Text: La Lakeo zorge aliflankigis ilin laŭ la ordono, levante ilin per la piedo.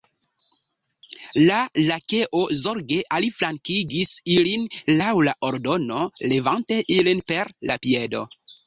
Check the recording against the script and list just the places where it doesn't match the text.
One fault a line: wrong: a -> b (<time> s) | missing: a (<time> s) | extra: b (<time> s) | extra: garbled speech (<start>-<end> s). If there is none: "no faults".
no faults